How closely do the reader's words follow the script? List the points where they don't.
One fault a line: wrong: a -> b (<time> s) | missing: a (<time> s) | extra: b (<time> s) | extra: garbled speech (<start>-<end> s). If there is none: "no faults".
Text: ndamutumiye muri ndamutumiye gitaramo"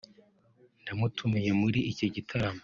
wrong: ndamutumiye -> iki (1.9 s)